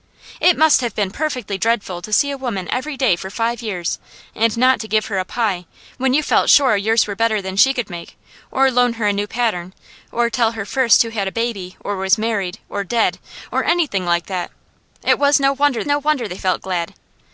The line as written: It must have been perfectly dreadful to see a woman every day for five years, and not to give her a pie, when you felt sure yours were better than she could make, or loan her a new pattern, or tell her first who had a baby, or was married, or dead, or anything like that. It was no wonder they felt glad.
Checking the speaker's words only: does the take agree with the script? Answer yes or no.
no